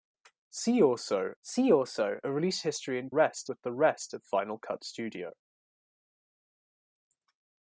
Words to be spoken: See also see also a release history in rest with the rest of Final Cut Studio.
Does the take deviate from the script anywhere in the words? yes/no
no